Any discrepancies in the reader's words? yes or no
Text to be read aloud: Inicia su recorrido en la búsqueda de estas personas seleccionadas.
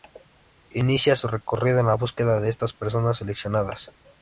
no